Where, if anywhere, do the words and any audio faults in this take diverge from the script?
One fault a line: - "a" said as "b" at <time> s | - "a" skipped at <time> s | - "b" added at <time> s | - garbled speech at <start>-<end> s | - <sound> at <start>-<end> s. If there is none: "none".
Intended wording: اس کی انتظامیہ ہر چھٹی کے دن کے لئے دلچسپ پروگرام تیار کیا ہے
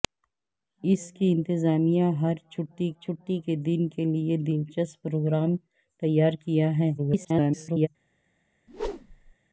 - "چھٹی" added at 3.0 s
- garbled speech at 7.0-7.9 s
- whoosh at 8.7-9.4 s